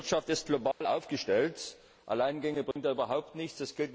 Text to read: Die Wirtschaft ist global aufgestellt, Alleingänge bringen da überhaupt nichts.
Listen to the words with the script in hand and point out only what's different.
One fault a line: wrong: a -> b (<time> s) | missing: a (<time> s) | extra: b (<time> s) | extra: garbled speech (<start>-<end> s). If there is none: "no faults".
no faults